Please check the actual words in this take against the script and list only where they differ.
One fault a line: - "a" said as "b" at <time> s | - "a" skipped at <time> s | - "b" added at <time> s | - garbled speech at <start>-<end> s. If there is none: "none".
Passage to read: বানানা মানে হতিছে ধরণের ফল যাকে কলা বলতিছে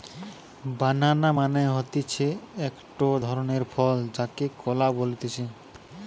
- "একটো" added at 2.7 s